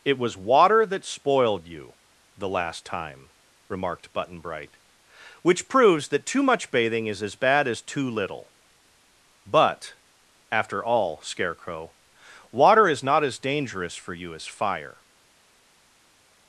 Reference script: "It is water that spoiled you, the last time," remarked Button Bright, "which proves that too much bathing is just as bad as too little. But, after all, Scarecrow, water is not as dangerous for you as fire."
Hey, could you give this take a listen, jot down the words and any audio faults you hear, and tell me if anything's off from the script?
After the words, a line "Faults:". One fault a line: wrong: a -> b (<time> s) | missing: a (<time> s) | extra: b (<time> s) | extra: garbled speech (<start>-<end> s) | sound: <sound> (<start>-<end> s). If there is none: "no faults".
"It was water that spoiled you, the last time," remarked Button Bright, "which proves that too much bathing is as bad as too little. But, after all, Scarecrow, water is not as dangerous for you as fire."
Faults:
wrong: is -> was (0.2 s)
missing: just (7.2 s)